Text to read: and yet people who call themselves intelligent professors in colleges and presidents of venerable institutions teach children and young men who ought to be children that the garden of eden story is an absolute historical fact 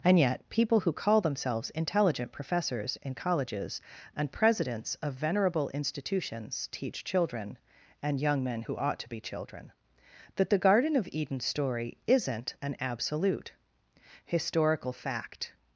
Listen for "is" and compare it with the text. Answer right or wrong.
wrong